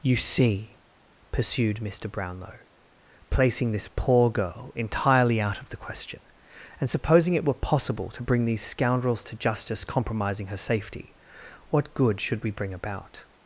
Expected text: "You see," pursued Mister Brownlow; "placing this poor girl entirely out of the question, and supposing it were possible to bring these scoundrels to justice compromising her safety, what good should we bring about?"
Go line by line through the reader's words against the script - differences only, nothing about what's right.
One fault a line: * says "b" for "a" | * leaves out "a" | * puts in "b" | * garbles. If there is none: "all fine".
all fine